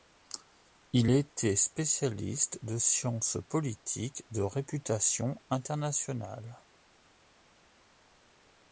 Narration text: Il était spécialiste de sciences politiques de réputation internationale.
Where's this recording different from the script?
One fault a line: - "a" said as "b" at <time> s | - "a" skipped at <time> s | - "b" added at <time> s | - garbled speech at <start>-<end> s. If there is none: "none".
none